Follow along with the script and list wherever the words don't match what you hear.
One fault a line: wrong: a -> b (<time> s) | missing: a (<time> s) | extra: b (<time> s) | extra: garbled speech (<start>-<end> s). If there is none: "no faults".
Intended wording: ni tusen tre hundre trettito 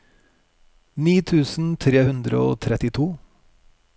extra: og (2.4 s)